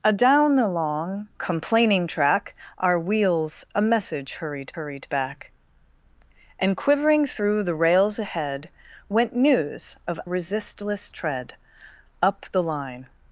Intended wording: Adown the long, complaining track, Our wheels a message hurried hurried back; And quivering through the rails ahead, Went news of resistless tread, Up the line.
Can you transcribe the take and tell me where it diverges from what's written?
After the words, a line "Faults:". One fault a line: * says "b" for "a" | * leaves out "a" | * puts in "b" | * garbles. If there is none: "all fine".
Adown the long, complaining track, Our wheels a message hurried hurried back; And quivering through the rails ahead, Went news of resistless tread, Up the line.
Faults:
all fine